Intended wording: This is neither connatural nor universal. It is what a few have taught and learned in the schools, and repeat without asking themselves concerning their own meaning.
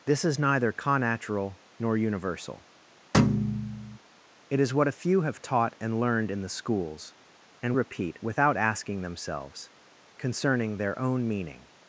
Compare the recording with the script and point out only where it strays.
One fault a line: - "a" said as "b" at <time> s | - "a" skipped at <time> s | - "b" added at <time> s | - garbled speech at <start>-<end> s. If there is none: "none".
none